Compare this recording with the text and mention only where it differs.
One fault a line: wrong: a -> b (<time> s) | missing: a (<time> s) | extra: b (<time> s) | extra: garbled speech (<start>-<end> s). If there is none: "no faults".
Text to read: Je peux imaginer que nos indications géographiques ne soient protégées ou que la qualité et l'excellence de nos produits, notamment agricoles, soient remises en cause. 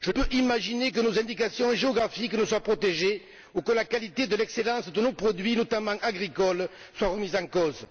no faults